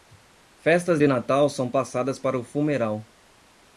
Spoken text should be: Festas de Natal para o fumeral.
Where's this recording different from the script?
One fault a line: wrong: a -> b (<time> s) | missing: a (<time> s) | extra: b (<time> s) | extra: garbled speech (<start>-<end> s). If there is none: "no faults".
extra: são passadas (1.5 s)